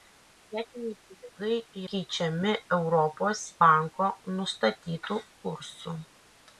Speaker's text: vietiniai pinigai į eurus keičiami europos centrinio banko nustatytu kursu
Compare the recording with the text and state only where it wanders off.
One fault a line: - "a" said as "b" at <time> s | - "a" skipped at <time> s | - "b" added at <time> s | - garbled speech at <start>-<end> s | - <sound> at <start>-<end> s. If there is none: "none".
- "eurus" skipped at 1.8 s
- "centrinio" skipped at 3.5 s